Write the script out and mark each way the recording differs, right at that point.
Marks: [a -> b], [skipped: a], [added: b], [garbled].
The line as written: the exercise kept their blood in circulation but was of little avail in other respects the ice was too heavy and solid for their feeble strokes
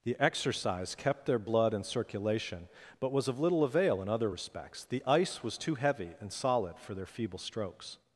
the exercise kept their blood in circulation but was of little avail in other respects the ice was too heavy and solid for their feeble strokes